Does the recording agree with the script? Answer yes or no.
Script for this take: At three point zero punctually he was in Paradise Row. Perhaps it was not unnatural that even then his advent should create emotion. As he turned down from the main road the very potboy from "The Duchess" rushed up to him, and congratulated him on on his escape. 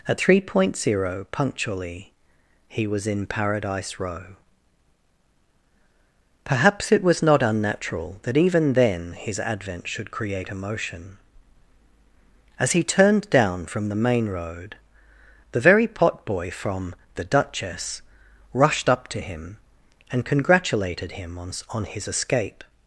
yes